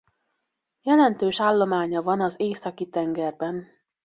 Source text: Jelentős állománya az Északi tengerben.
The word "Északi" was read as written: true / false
true